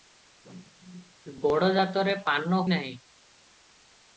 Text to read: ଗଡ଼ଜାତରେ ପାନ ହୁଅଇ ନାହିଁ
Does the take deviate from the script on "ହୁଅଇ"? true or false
true